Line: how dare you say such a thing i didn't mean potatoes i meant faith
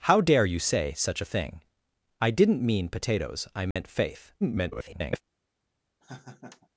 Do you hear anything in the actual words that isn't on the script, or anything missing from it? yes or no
yes